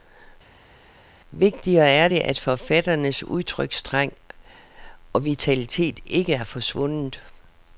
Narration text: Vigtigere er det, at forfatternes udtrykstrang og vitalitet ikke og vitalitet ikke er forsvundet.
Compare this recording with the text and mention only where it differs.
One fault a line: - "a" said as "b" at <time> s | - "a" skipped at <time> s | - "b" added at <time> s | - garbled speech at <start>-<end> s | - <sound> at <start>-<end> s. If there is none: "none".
- "og vitalitet ikke" skipped at 6.3 s